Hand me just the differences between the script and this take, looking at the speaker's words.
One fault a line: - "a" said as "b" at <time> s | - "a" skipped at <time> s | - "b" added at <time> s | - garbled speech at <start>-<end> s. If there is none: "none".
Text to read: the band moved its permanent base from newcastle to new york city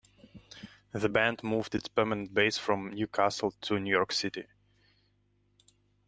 none